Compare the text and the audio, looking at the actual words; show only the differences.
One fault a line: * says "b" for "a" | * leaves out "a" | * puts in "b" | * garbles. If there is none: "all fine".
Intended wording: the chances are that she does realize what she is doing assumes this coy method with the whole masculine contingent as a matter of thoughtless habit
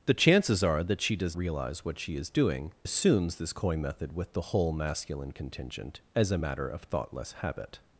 all fine